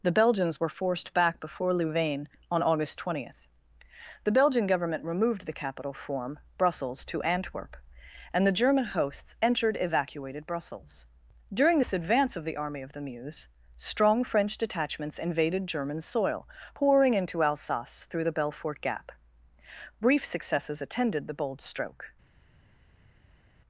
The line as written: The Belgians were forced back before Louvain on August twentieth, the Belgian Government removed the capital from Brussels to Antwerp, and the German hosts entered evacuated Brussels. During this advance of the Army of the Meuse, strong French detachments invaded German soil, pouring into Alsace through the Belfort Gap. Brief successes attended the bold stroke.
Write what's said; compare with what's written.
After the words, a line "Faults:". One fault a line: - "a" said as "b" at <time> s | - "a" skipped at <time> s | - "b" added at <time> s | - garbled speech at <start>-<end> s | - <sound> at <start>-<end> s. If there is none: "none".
The Belgians were forced back before Louvain on August twentieth, the Belgian Government removed the capital form Brussels to Antwerp, and the German hosts entered evacuated Brussels. During this advance of the Army of the Meuse, strong French detachments invaded German soil, pouring into Alsace through the Belfort Gap. Brief successes attended the bold stroke.
Faults:
- "from" said as "form" at 5.9 s